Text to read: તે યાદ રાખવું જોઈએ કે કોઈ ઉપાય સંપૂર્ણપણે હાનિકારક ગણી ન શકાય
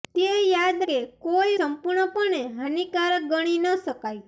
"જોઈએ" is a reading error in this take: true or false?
true